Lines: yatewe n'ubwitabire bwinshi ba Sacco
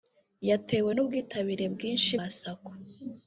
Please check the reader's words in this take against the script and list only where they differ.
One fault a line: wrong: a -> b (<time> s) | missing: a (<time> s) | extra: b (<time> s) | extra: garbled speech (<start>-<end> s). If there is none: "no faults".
no faults